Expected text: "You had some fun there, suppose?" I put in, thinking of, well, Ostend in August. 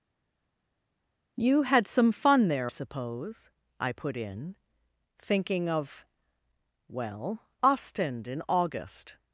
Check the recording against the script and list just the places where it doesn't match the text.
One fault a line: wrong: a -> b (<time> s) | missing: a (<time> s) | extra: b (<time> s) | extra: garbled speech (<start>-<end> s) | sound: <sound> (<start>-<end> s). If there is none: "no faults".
no faults